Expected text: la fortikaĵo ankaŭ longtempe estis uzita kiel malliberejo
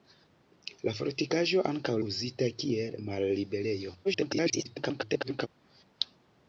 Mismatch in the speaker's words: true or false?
true